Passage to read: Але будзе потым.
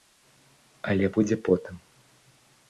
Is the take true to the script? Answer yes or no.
yes